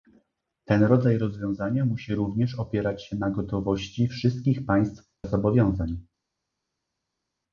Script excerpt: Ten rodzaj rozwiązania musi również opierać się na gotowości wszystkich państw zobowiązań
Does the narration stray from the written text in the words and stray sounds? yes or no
no